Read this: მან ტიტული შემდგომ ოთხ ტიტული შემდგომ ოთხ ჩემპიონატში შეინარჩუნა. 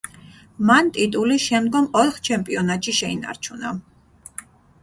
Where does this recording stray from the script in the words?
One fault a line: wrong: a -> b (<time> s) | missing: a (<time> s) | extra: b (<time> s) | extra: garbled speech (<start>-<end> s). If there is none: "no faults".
missing: ტიტული შემდგომ ოთხ (2.2 s)